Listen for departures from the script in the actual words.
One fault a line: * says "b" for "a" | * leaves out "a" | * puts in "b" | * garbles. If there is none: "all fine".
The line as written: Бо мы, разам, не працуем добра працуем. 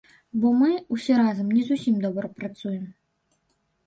* puts in "усе"
* says "зусім" for "працуем"